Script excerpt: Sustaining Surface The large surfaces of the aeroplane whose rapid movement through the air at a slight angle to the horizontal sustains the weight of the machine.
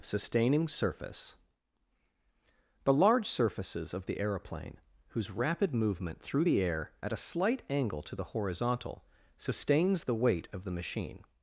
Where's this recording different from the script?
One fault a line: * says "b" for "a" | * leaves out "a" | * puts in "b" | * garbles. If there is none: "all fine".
all fine